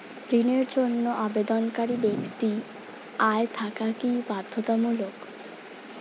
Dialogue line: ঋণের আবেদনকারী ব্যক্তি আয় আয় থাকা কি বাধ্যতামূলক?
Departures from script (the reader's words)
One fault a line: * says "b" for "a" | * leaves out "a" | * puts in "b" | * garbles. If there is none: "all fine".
* puts in "জন্য"
* leaves out "আয়"